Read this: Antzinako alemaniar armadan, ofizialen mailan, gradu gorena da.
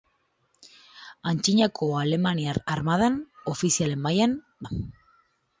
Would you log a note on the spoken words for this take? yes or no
yes